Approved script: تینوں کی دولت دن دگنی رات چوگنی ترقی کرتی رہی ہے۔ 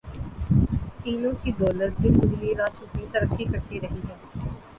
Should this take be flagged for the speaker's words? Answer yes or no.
no